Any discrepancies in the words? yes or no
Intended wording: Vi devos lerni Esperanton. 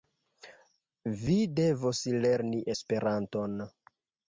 no